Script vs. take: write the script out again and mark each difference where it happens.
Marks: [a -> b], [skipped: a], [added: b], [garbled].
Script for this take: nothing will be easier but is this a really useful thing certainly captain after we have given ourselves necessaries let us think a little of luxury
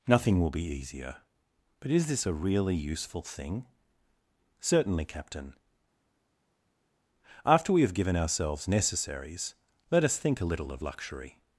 nothing will be easier but is this a really useful thing certainly captain after we have given ourselves necessaries let us think a little of luxury